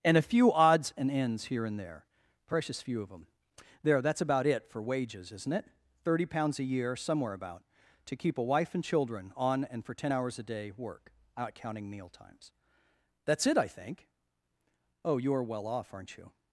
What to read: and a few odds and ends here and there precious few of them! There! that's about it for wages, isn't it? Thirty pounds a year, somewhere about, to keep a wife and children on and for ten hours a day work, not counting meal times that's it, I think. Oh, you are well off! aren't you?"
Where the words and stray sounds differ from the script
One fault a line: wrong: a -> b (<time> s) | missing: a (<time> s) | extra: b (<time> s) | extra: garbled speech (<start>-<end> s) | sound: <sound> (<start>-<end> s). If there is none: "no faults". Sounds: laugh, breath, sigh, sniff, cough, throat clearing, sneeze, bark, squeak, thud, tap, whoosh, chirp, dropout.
no faults